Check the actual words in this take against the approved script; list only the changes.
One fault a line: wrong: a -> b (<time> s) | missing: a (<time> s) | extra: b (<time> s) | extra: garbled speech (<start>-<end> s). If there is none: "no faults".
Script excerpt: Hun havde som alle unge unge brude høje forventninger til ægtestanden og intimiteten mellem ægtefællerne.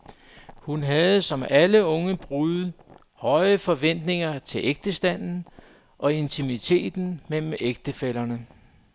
missing: unge (2.2 s)